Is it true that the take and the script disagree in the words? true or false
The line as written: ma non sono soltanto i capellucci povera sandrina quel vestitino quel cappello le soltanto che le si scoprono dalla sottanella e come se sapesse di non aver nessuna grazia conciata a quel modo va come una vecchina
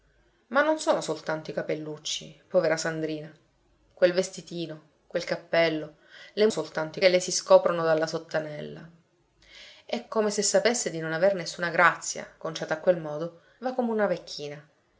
false